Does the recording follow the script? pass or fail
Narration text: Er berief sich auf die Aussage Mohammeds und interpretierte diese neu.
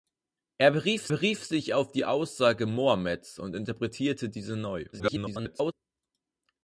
fail